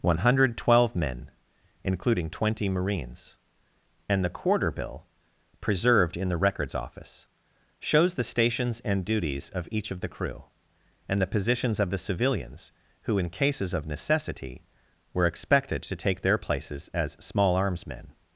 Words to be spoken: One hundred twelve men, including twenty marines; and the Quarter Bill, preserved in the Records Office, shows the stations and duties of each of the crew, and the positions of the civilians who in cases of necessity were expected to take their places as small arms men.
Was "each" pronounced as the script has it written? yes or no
yes